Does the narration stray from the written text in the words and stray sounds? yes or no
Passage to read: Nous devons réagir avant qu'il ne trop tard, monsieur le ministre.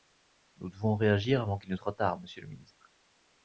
no